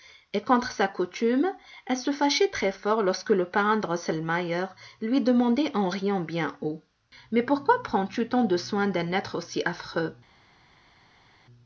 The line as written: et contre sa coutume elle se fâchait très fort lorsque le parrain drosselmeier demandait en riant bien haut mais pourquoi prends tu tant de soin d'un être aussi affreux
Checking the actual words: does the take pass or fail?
fail